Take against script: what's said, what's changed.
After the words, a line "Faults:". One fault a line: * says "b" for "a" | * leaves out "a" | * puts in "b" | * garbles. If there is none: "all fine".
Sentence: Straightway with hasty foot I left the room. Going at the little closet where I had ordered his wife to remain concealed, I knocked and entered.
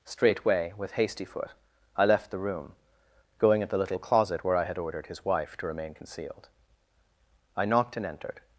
Straightway with hasty foot I left the room. Going at the little closet where I had ordered his wife to remain concealed, I knocked and entered.
Faults:
all fine